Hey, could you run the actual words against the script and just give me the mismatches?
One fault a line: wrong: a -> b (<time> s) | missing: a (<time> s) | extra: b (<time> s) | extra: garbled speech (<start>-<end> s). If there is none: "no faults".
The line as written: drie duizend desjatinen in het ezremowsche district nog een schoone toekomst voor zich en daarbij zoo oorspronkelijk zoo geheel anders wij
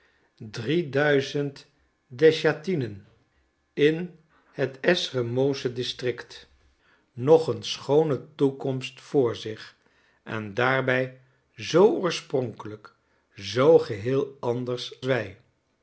no faults